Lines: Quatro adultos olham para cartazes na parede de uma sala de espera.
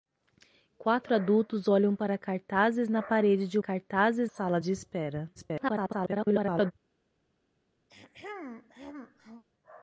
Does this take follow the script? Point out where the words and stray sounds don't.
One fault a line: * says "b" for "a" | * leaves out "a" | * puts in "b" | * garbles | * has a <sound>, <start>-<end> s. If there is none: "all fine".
* says "cartazes" for "uma"
* garbles
* has a throat clearing, 7.9-9.4 s